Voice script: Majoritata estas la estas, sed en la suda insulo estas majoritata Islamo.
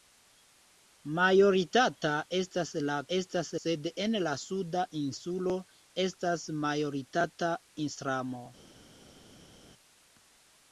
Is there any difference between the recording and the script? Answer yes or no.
no